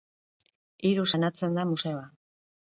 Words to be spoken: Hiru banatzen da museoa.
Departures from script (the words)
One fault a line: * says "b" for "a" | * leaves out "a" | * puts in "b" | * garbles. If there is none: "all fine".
all fine